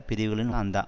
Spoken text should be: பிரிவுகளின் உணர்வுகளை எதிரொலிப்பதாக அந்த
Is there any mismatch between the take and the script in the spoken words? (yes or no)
yes